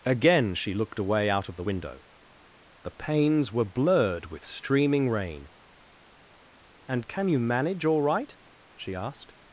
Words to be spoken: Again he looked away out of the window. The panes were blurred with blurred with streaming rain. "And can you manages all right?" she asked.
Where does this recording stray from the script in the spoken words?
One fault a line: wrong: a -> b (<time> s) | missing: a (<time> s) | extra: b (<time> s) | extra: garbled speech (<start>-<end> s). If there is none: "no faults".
wrong: he -> she (0.6 s)
missing: blurred with (4.4 s)
wrong: manages -> manage (7.4 s)